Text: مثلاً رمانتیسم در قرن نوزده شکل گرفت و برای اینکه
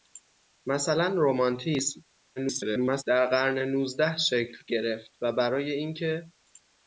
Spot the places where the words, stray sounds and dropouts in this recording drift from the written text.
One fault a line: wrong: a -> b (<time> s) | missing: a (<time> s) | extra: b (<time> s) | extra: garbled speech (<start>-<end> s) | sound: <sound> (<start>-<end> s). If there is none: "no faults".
extra: garbled speech (2.4-3.0 s)